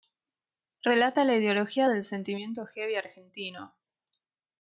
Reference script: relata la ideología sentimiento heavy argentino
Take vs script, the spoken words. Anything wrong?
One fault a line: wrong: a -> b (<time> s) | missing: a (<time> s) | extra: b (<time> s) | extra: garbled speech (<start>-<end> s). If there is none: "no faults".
extra: del (1.9 s)